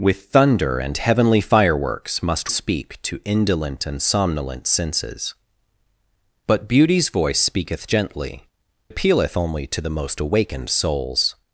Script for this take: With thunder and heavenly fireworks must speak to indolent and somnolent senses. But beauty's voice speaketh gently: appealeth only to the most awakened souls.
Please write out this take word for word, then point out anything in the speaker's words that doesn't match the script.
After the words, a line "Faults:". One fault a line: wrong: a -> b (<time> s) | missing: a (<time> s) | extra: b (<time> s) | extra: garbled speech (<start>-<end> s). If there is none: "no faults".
With thunder and heavenly fireworks must speak to indolent and somnolent senses. But beauty's voice speaketh gently: appealeth only to the most awakened souls.
Faults:
no faults